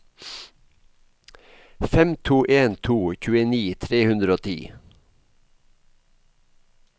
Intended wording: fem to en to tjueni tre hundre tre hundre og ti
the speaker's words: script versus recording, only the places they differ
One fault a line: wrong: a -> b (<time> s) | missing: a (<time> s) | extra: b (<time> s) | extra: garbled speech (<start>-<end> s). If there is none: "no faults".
missing: tre hundre (4.4 s)